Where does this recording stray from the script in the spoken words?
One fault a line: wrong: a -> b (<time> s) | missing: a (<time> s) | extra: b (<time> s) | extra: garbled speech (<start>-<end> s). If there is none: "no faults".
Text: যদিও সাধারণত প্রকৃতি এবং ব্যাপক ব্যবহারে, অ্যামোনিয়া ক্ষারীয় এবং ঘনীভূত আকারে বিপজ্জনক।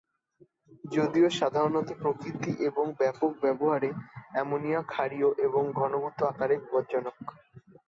no faults